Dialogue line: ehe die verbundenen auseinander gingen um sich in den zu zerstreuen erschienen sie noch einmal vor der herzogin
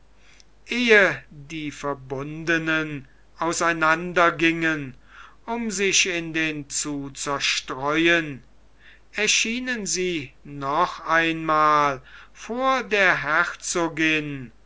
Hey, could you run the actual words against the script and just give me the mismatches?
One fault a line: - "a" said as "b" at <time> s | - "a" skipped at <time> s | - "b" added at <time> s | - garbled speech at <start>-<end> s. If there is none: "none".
none